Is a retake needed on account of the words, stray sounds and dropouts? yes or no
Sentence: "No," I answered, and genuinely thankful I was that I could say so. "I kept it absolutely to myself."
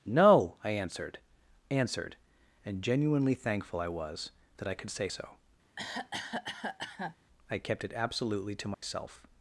yes